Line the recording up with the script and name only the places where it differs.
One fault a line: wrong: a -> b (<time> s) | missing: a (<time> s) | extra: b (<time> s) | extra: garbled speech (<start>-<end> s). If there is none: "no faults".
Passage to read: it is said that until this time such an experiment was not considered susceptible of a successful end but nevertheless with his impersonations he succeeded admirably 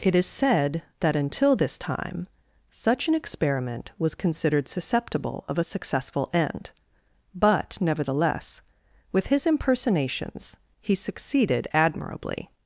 missing: not (4.2 s)